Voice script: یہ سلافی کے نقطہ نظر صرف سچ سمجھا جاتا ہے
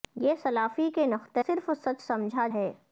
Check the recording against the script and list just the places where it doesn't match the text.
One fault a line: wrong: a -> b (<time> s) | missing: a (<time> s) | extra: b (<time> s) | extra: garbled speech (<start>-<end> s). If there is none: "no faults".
missing: نظر (1.4 s)
missing: جاتا (2.5 s)